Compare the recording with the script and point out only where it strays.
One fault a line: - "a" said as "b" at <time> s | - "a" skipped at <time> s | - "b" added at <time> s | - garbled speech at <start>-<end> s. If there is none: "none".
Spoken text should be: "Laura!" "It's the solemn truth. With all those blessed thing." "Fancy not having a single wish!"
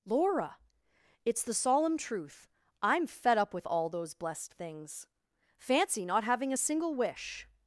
- "I'm fed up" added at 2.8 s
- "thing" said as "things" at 4.5 s